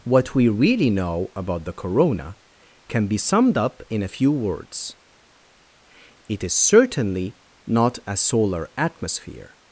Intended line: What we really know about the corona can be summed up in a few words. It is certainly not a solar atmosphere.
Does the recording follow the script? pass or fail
pass